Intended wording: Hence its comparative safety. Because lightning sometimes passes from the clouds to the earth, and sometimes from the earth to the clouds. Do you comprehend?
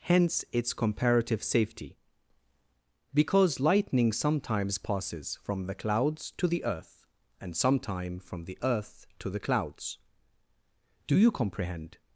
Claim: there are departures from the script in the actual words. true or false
true